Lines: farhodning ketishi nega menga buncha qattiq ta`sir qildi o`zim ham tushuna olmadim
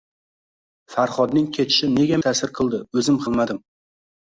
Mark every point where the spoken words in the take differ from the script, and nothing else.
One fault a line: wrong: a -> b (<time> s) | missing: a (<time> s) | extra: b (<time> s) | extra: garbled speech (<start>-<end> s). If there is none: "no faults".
missing: menga buncha qattiq (2.2 s)
missing: ham tushuna (3.2 s)